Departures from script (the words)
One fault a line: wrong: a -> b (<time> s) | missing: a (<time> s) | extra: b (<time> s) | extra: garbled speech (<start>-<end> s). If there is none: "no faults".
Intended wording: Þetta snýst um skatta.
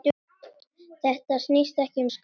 extra: ekki (1.8 s)